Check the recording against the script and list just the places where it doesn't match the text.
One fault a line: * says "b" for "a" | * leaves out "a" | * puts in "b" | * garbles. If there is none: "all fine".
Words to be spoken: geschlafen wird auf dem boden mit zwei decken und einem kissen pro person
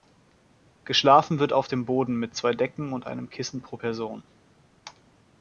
all fine